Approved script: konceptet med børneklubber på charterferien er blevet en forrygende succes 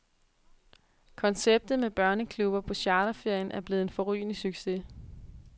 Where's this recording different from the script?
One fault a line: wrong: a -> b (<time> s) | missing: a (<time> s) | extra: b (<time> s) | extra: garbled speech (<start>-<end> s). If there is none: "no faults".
no faults